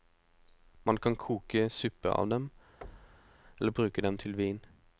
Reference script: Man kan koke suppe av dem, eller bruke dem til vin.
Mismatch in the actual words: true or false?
false